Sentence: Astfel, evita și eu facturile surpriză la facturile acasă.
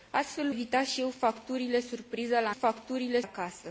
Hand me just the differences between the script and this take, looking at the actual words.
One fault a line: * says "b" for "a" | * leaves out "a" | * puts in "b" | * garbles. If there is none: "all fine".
all fine